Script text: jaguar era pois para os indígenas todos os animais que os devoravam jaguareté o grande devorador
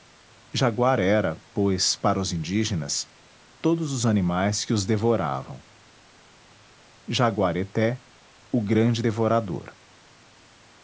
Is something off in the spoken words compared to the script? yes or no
no